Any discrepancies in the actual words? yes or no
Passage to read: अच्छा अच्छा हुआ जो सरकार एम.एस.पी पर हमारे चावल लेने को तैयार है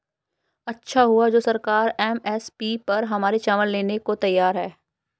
yes